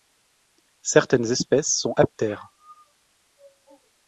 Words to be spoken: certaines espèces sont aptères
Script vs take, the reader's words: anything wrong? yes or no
no